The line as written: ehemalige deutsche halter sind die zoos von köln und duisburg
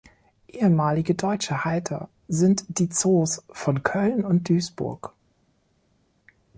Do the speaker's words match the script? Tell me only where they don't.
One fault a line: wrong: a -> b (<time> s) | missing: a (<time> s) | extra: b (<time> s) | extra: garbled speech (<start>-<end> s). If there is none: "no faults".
no faults